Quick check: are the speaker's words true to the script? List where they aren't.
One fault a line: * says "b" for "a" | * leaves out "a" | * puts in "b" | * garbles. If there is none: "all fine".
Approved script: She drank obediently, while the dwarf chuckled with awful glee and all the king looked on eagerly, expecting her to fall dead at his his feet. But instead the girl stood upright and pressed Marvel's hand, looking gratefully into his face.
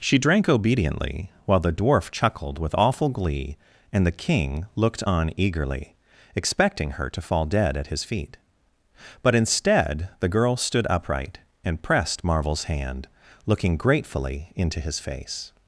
* leaves out "all"
* leaves out "his"